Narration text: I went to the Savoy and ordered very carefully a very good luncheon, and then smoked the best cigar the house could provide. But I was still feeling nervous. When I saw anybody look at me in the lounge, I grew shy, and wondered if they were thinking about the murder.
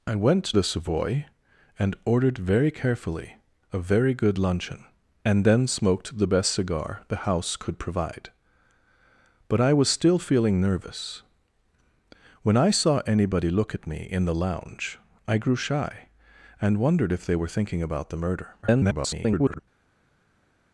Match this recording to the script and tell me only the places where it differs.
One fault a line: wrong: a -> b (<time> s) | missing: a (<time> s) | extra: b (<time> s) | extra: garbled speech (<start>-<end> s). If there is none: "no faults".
missing: to (0.5 s)
extra: garbled speech (18.6-19.6 s)